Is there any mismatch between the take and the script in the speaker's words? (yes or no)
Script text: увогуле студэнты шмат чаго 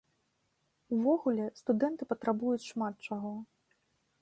yes